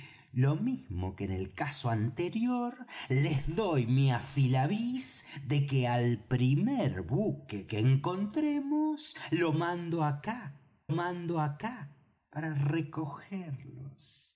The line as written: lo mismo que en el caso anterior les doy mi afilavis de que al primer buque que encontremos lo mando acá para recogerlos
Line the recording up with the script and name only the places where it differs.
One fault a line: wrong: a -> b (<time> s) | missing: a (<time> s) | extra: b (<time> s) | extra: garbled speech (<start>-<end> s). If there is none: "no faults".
extra: mando acá (10.9 s)